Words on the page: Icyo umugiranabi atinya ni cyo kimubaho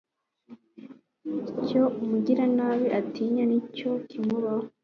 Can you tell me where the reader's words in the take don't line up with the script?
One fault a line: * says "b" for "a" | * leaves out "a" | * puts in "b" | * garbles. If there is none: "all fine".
all fine